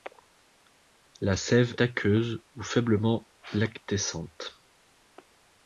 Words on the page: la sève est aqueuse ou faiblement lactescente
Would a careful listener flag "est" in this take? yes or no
yes